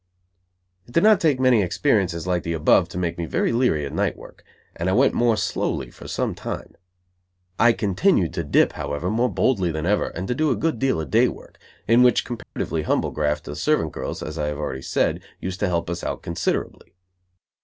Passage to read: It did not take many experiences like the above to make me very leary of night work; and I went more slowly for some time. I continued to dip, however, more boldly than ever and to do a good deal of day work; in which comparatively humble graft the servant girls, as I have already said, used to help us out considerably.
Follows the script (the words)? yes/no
yes